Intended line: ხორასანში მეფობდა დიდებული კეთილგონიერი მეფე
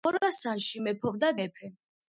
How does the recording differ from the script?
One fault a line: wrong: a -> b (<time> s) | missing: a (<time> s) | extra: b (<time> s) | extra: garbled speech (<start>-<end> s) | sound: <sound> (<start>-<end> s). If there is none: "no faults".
missing: დიდებული კეთილგონიერი (1.3 s)